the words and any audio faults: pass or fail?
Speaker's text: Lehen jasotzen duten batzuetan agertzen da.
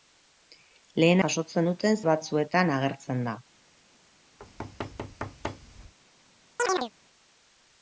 fail